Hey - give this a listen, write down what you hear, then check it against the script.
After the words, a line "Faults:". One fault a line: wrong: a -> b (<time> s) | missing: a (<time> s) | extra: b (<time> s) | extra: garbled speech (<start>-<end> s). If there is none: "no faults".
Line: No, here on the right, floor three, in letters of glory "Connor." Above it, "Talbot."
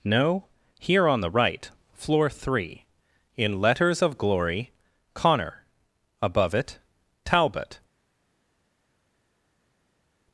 No, here on the right, floor three, in letters of glory "Connor." Above it, "Talbot."
Faults:
no faults